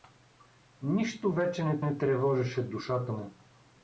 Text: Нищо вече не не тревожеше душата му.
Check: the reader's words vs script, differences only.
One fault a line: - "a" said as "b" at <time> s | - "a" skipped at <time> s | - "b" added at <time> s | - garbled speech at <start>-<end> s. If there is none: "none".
none